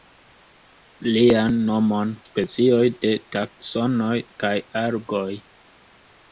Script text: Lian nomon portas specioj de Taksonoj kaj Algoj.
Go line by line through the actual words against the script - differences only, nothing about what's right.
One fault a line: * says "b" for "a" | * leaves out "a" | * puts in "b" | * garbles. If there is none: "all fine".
* leaves out "portas"